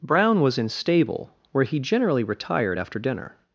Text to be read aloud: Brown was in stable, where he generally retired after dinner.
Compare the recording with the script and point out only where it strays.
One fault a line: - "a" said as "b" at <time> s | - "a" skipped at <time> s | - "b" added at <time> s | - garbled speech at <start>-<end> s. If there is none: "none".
none